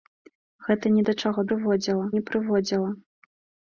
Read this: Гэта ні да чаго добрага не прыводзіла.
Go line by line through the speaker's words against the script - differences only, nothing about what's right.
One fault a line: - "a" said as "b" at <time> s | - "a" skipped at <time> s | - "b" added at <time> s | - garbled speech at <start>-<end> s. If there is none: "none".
- "добрага" said as "прыводзіла" at 1.5 s